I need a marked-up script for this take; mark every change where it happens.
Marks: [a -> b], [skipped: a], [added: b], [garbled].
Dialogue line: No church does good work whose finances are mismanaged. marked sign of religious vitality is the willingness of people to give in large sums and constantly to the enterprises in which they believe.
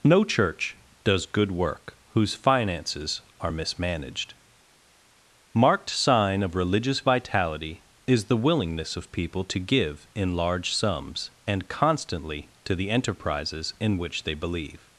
No church does good work whose finances are mismanaged. marked sign of religious vitality is the willingness of people to give in large sums and constantly to the enterprises in which they believe.